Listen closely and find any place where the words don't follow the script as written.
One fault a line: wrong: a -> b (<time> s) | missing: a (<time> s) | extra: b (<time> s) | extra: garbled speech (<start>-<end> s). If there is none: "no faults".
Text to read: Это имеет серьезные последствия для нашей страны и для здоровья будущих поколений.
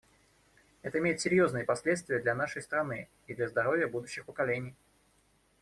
no faults